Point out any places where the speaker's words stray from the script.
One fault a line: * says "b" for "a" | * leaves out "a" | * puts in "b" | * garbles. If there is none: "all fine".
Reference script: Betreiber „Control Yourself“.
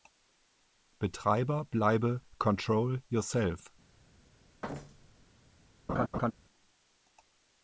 * puts in "bleibe"